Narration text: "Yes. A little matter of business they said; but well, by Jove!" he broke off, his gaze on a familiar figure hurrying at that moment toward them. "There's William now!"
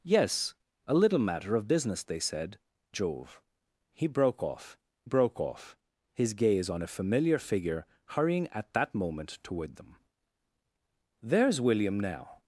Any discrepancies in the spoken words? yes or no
yes